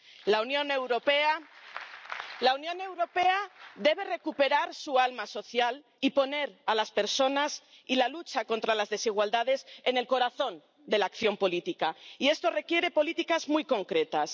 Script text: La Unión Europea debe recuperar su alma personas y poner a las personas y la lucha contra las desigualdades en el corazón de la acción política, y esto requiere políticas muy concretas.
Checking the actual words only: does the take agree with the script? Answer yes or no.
no